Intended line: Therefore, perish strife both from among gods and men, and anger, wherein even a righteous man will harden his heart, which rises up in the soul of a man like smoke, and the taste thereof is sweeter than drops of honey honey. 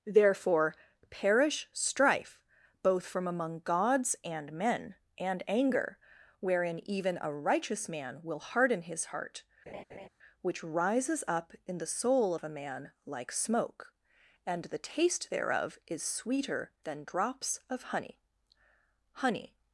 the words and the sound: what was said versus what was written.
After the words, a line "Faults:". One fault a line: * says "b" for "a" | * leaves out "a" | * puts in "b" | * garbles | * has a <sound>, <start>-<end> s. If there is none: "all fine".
Therefore, perish strife both from among gods and men, and anger, wherein even a righteous man will harden his heart, which rises up in the soul of a man like smoke, and the taste thereof is sweeter than drops of honey honey.
Faults:
* has a laugh, 9.7-10.1 s